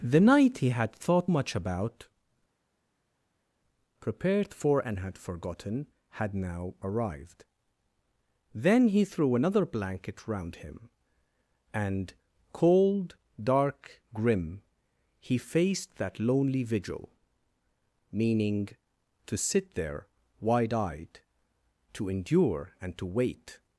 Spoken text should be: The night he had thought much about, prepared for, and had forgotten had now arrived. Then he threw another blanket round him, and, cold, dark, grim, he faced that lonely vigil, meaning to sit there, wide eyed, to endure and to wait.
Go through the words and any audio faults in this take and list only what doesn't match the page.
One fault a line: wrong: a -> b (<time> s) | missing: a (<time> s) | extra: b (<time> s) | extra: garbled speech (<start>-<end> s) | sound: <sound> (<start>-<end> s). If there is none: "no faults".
no faults